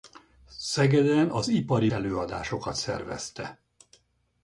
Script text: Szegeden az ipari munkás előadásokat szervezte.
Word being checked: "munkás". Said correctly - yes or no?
no